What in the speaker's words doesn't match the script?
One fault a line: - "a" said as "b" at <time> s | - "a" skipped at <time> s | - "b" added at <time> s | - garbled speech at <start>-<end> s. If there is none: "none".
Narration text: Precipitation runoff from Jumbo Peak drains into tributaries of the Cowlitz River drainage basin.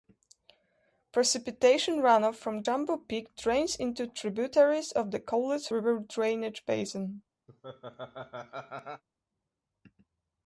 none